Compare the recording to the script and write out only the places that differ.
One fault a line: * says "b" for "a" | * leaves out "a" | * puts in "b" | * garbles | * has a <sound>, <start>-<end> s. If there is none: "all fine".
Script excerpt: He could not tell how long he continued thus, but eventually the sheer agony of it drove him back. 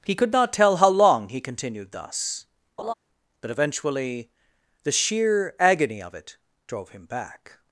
* has a laugh, 2.8-2.9 s